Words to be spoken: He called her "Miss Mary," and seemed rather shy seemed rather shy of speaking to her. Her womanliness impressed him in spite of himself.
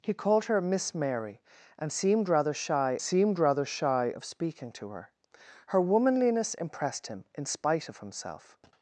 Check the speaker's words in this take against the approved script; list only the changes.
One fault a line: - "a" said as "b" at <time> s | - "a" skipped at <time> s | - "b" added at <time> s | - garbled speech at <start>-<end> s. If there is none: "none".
none